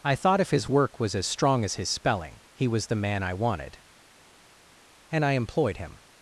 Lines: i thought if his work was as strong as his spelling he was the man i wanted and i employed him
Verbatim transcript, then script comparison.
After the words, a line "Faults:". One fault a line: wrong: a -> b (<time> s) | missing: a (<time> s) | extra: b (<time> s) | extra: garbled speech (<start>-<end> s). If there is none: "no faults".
i thought if his work was as strong as his spelling he was the man i wanted and i employed him
Faults:
no faults